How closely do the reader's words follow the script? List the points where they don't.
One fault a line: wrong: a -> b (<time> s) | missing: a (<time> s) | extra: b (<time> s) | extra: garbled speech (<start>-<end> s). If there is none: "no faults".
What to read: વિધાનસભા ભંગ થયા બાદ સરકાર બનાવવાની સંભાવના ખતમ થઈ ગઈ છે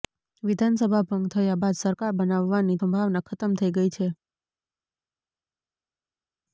no faults